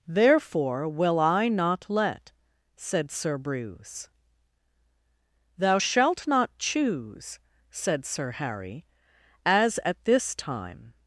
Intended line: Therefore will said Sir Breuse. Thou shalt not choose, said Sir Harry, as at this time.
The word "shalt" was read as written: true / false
true